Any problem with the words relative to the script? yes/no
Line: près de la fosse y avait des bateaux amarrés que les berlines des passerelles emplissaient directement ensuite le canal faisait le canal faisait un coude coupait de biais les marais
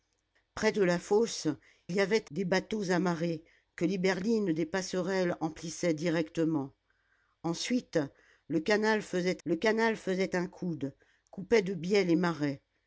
no